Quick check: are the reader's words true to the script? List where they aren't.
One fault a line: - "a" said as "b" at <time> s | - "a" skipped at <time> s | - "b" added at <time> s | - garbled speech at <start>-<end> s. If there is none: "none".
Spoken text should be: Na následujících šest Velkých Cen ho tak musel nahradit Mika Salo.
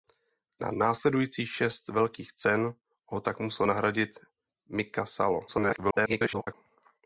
- garbled speech at 5.5-6.5 s